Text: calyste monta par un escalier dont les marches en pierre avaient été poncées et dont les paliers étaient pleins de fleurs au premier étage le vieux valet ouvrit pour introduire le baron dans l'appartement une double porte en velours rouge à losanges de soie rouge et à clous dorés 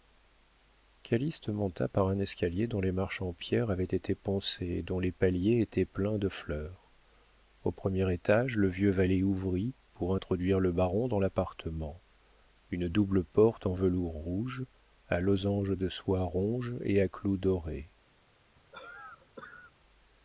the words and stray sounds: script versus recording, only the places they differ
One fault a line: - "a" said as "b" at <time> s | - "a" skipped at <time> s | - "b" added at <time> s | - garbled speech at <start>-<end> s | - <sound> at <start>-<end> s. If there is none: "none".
- cough at 18.6-19.7 s